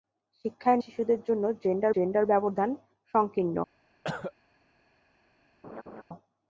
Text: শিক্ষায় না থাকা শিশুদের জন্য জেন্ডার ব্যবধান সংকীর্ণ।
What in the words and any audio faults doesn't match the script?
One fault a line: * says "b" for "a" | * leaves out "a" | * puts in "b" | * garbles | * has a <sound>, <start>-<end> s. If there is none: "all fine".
* leaves out "না থাকা"
* puts in "জেন্ডার"
* has a cough, 4.0-4.3 s
* has a laugh, 5.6-6.0 s